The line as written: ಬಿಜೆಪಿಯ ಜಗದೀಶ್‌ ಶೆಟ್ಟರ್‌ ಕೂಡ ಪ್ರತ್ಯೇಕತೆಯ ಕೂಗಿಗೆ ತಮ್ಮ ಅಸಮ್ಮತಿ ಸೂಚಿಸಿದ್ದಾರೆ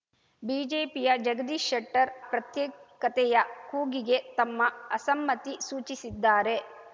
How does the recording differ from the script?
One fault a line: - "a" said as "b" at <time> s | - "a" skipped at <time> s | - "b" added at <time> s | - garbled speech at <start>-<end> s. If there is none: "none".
- "ಕೂಡ" skipped at 2.1 s